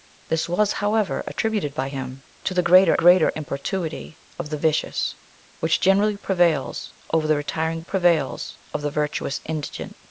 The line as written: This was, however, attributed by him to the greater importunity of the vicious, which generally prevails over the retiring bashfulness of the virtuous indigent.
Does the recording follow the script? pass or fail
fail